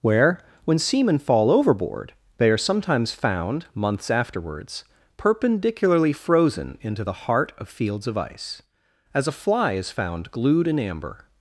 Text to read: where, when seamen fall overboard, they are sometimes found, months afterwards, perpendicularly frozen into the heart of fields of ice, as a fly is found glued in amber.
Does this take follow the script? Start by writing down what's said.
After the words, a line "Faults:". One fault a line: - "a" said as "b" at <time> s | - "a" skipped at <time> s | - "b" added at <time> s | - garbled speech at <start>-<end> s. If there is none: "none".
where, when seamen fall overboard, they are sometimes found, months afterwards, perpendicularly frozen into the heart of fields of ice, as a fly is found glued in amber.
Faults:
none